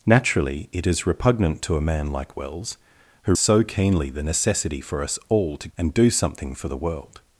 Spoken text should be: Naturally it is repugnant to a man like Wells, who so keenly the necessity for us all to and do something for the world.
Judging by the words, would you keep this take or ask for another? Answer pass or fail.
pass